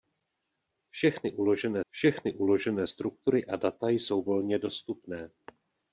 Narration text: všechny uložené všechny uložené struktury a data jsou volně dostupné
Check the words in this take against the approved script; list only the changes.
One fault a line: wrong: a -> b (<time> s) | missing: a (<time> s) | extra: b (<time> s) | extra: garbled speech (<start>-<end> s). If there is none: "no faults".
no faults